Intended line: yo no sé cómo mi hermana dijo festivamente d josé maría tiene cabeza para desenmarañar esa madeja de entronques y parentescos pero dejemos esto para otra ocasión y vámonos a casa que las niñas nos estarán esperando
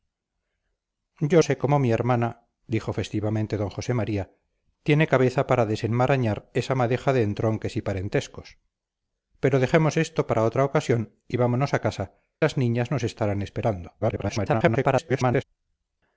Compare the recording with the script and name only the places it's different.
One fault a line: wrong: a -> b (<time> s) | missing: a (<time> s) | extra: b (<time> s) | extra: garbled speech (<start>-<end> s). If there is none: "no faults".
missing: no (1.4 s)
missing: que (12.1 s)
extra: garbled speech (14.0-15.4 s)